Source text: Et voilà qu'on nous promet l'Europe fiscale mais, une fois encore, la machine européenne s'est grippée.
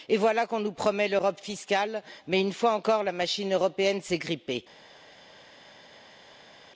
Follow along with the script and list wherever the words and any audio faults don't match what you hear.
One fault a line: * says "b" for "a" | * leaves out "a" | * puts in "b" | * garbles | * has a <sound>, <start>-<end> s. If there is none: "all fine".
all fine